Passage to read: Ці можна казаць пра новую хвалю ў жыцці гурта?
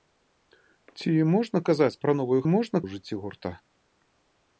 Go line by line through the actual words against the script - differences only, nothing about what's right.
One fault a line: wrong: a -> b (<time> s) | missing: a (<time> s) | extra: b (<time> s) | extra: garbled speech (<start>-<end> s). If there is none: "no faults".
wrong: хвалю -> можна (2.5 s)